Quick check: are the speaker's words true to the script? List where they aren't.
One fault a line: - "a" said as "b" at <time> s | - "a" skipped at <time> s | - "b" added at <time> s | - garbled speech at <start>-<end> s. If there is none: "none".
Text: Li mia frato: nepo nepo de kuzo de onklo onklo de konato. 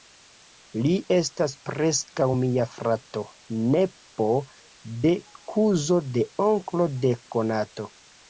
- "estas preskaŭ" added at 1.1 s
- "nepo" skipped at 4.3 s
- "onklo" skipped at 6.9 s